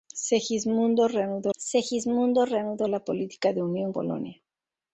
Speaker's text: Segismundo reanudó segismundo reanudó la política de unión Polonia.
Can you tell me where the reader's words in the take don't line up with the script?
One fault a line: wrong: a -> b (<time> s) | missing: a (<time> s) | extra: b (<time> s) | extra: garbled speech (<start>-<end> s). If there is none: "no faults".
no faults